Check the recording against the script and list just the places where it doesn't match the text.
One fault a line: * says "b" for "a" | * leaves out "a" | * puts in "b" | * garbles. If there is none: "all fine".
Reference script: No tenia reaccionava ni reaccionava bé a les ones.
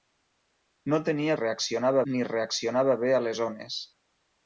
all fine